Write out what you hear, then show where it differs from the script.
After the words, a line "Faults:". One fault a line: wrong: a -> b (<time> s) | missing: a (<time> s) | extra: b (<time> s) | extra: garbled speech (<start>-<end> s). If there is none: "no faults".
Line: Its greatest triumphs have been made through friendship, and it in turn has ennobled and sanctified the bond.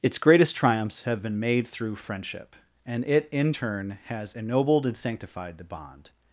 Its greatest triumphs have been made through friendship, and it in turn has ennobled and sanctified the bond.
Faults:
no faults